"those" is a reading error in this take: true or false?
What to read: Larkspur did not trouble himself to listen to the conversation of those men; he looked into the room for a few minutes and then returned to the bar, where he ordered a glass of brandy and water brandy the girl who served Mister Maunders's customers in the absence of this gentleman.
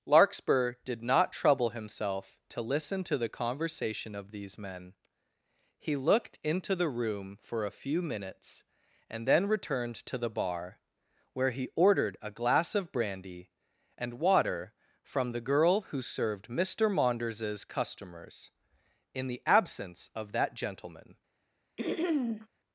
true